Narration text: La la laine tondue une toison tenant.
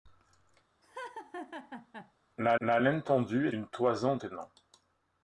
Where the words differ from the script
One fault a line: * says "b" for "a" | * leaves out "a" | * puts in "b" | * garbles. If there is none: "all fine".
all fine